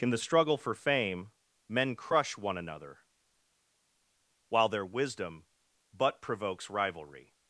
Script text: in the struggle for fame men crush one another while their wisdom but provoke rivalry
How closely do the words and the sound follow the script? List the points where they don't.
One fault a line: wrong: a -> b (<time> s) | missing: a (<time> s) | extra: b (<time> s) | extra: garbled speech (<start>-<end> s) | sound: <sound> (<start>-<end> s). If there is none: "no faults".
wrong: provoke -> provokes (6.2 s)